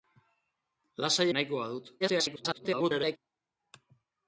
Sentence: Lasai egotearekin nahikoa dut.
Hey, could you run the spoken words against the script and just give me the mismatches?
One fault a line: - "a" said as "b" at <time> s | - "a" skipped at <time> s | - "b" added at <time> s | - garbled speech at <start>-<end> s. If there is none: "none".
- "egotearekin" skipped at 1.3 s
- garbled speech at 2.0-3.2 s